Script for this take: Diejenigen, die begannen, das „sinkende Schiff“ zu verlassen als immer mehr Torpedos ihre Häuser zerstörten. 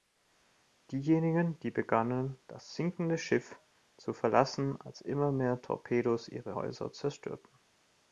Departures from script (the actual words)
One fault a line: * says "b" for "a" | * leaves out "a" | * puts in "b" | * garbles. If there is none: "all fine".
all fine